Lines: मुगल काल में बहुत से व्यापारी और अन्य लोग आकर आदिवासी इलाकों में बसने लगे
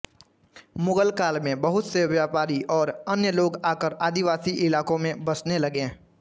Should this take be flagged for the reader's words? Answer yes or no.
no